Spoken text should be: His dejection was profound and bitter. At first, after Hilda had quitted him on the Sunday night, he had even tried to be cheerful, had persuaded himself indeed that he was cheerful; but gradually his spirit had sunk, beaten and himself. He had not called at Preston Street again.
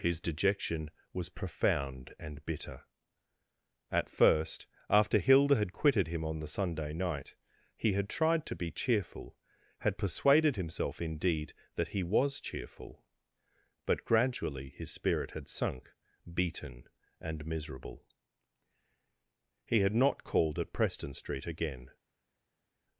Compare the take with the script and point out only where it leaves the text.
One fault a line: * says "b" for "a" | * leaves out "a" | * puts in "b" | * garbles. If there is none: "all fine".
* leaves out "even"
* says "miserable" for "himself"